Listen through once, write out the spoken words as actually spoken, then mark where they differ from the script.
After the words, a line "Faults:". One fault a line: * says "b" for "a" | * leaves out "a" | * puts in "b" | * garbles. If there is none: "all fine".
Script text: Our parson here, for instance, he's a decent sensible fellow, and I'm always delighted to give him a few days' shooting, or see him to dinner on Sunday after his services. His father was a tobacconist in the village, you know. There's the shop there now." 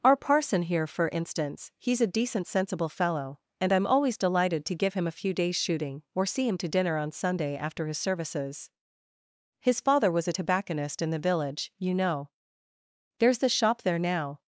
Our parson here, for instance, he's a decent sensible fellow, and I'm always delighted to give him a few days' shooting, or see him to dinner on Sunday after his services. His father was a tobacconist in the village, you know. There's the shop there now."
Faults:
all fine